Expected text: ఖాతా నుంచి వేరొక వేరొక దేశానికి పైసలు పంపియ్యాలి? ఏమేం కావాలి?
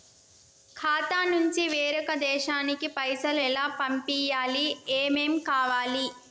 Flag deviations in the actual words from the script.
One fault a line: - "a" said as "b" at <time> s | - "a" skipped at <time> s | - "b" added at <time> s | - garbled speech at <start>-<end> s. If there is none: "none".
- "వేరొక" skipped at 2.1 s
- "ఎలా" added at 3.4 s